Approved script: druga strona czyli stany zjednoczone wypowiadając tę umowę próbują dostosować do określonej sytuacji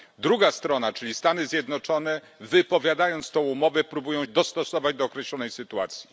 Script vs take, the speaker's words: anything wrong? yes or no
no